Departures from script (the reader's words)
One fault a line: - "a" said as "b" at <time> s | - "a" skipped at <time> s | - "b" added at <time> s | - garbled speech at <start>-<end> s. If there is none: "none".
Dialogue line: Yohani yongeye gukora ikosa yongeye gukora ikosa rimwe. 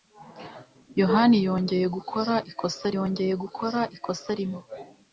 none